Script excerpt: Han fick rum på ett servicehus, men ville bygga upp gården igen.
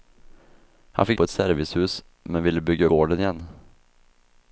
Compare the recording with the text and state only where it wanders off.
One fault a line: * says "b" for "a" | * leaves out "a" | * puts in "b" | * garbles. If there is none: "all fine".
* leaves out "rum"
* leaves out "upp"